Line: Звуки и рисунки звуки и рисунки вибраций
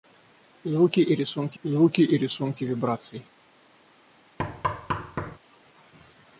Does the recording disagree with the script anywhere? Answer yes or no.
no